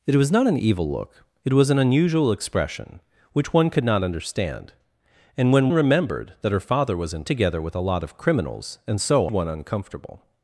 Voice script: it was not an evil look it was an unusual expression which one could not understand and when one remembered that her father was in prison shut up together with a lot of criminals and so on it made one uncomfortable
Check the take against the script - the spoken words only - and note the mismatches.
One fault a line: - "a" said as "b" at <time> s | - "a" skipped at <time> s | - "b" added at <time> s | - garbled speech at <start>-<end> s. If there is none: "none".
- "one" skipped at 5.7 s
- "prison shut up" skipped at 7.2 s
- "on it made" skipped at 9.3 s